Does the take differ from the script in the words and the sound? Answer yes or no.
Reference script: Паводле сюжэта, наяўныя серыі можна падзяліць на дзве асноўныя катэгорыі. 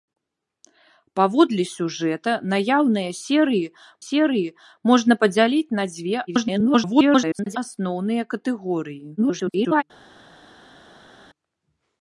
yes